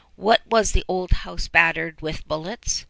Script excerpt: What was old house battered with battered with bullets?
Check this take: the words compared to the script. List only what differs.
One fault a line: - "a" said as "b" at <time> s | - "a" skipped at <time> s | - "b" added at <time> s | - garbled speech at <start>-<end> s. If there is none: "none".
- "the" added at 0.7 s
- "battered with" skipped at 2.3 s